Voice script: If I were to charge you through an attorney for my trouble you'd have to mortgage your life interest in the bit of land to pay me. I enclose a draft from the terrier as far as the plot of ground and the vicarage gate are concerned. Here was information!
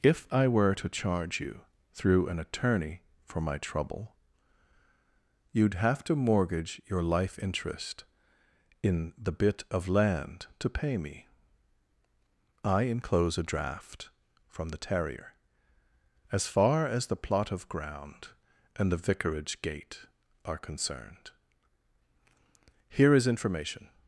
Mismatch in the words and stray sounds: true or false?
true